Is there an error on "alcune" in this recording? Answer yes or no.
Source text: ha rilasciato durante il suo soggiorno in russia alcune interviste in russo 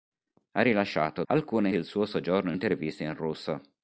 yes